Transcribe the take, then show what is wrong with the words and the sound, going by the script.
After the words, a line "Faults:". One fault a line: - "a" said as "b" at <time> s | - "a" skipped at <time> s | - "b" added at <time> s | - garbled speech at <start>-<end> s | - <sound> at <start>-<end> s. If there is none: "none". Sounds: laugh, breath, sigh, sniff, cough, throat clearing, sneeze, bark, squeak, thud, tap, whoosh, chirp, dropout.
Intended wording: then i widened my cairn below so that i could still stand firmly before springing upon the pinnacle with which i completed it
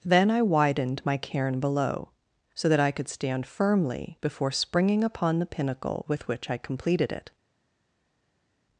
then i widened my cairn below so that i could stand firmly before springing upon the pinnacle with which i completed it
Faults:
- "still" skipped at 3.1 s